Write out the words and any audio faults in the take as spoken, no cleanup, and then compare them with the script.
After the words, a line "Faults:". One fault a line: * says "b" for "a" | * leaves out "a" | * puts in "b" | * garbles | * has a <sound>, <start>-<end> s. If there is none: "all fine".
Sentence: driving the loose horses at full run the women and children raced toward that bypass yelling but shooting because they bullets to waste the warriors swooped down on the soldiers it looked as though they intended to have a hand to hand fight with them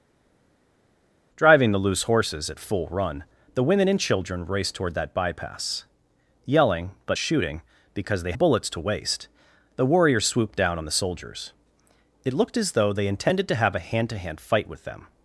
driving the loose horses at full run the women and children raced toward that bypass yelling but shooting because they bullets to waste the warriors swooped down on the soldiers it looked as though they intended to have a hand to hand fight with them
Faults:
all fine